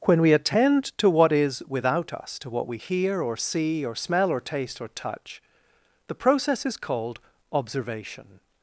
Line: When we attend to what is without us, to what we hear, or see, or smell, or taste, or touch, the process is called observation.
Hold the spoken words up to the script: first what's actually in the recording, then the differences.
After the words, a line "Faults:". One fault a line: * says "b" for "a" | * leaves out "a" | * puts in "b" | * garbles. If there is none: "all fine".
When we attend to what is without us, to what we hear, or see, or smell, or taste, or touch, the process is called observation.
Faults:
all fine